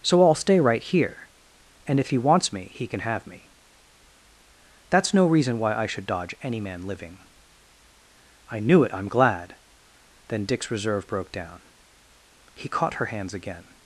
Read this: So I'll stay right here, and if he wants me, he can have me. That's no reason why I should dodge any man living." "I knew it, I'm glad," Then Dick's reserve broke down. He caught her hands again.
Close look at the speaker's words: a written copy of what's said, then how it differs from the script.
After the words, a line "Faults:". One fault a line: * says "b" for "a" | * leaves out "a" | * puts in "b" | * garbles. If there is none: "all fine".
So I'll stay right here, and if he wants me, he can have me. That's no reason why I should dodge any man living." "I knew it, I'm glad," Then Dick's reserve broke down. He caught her hands again.
Faults:
all fine